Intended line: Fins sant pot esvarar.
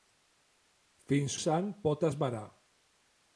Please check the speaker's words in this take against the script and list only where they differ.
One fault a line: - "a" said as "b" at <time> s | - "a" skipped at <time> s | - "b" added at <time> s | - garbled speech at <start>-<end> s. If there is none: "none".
none